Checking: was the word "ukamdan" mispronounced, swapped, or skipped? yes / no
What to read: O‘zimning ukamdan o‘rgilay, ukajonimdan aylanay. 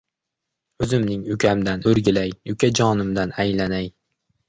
no